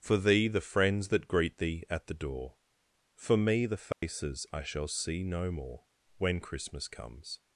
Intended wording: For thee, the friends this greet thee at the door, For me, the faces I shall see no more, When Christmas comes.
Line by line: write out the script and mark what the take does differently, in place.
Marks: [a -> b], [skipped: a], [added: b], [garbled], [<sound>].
For thee, the friends [this -> that] greet thee at the door, For me, the faces [dropout] I shall see no more, When Christmas comes.